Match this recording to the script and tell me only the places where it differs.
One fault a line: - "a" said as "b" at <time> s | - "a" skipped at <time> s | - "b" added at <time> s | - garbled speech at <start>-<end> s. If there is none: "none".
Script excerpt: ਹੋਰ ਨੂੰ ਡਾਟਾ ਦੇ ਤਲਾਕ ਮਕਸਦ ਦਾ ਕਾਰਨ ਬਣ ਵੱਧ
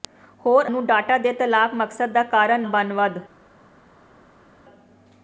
none